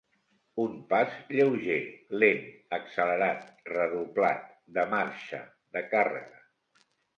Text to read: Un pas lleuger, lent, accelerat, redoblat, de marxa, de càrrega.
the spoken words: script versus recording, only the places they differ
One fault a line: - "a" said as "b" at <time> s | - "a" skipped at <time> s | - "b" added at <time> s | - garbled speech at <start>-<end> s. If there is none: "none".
none